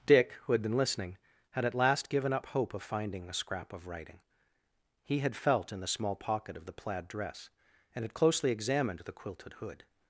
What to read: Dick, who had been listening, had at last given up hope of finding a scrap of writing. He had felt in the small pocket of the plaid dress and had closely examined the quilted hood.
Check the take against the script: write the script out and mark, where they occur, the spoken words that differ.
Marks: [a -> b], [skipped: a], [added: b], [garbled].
Dick, who had been listening, had at last given up hope of finding a scrap of writing. He had felt in the small pocket of the plaid dress and had closely examined the quilted hood.